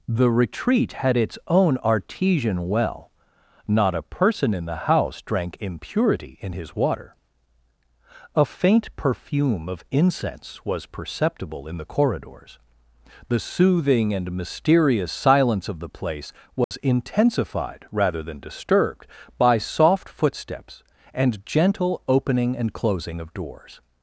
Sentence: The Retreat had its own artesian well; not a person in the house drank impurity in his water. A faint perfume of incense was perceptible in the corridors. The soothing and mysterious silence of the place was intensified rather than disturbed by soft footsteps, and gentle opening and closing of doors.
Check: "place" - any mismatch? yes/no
no